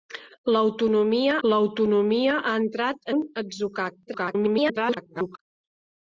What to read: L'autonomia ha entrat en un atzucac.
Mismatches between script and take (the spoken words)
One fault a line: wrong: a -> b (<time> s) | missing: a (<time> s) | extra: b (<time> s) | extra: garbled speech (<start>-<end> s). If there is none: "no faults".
extra: l'autonomia (1.5 s)
missing: en (3.1 s)
extra: garbled speech (4.1-5.4 s)